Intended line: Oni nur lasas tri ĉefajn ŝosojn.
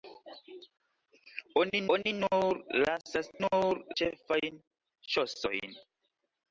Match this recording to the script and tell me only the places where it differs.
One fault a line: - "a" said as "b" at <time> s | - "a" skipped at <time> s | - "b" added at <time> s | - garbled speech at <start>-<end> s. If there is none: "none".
- "oni" added at 2.0 s
- "tri" said as "nur" at 3.4 s